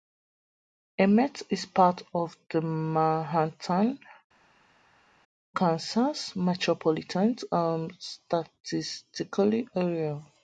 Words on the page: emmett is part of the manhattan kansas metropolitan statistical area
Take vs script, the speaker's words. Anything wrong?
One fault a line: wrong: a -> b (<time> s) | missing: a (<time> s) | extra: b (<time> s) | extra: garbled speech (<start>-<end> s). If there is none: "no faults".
no faults